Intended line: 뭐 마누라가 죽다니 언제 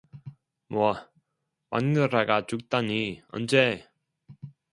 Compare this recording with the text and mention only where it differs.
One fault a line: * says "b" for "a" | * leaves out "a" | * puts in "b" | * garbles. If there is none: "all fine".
all fine